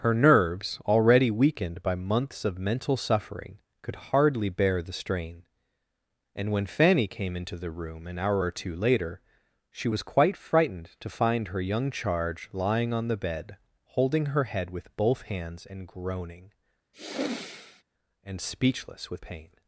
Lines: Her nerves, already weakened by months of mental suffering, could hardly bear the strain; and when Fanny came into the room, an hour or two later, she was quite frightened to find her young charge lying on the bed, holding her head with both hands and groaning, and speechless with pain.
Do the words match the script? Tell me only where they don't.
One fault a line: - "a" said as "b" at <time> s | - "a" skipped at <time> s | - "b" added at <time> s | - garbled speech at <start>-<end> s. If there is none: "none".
none